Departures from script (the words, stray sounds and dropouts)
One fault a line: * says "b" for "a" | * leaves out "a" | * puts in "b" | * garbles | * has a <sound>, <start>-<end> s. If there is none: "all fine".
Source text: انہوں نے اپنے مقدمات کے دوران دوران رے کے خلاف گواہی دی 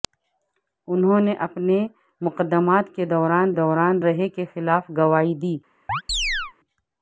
* has a chirp, 5.9-6.5 s